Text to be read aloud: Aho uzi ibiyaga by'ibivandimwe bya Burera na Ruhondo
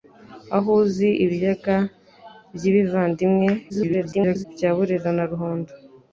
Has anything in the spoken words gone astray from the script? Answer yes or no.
yes